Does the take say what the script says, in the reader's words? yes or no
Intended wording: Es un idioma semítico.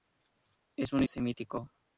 no